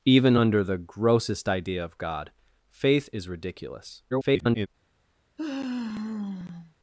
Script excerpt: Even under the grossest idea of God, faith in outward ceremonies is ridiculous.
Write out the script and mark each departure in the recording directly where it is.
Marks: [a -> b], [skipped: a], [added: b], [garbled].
Even under the grossest idea of God, faith [skipped: in outward ceremonies] is ridiculous. [garbled]